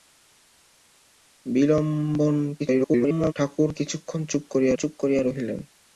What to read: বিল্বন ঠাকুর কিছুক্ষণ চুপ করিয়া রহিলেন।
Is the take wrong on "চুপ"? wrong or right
right